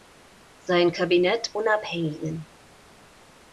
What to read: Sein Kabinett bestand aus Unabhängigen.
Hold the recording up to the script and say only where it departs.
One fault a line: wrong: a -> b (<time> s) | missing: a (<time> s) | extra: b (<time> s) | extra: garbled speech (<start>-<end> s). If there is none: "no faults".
missing: bestand aus (1.5 s)